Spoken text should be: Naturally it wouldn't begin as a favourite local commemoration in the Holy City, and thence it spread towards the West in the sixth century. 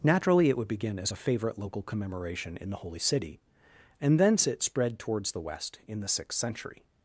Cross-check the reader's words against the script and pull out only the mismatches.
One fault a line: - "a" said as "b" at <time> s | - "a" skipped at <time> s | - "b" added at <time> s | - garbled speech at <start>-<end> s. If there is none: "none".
- "wouldn't" said as "would" at 0.6 s